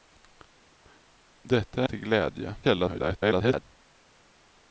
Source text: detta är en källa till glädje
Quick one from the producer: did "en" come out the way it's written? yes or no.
no